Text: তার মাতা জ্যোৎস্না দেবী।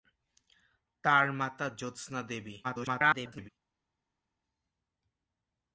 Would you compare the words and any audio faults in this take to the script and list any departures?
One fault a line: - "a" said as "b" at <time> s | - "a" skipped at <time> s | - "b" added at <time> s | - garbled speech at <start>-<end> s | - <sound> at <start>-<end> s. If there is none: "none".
- garbled speech at 2.6-3.5 s